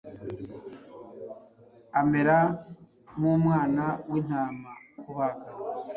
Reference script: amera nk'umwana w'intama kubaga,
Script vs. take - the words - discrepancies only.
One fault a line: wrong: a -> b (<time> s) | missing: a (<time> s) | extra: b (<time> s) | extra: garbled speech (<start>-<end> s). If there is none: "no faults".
no faults